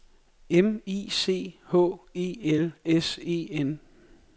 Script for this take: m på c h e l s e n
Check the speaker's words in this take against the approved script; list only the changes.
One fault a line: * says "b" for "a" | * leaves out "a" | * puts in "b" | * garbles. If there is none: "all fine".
* says "i" for "på"